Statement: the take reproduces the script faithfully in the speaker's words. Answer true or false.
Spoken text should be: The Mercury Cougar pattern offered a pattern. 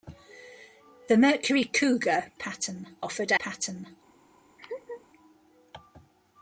true